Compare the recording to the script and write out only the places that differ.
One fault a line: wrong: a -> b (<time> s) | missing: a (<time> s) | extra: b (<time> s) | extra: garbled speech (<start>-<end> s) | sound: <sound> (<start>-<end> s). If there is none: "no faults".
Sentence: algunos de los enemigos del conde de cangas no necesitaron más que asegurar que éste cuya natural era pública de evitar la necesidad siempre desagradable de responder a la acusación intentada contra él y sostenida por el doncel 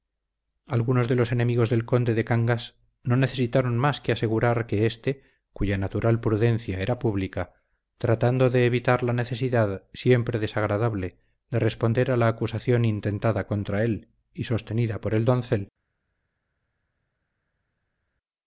extra: prudencia (6.2 s)
extra: tratando (8.0 s)